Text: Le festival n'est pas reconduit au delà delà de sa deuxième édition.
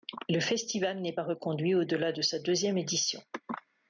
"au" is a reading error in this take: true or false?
false